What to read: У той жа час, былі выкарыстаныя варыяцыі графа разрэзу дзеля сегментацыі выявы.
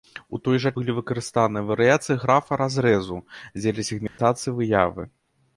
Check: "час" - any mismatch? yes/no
yes